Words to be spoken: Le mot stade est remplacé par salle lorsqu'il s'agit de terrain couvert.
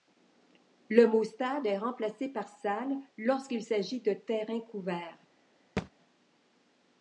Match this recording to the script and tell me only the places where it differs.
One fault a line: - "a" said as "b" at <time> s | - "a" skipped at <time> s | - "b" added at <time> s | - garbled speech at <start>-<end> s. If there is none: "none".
none